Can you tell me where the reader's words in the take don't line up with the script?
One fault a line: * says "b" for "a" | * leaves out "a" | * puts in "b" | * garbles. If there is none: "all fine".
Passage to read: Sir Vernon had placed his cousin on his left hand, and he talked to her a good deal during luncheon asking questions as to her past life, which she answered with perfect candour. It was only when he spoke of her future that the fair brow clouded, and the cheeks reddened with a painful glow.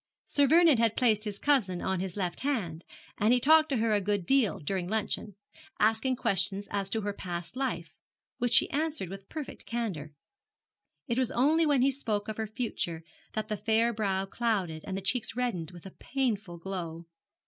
all fine